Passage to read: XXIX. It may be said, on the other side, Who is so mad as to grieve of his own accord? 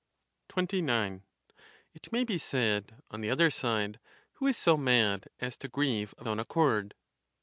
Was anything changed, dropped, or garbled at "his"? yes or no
yes